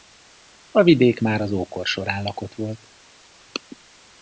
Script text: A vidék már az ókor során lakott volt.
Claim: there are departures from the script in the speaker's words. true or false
false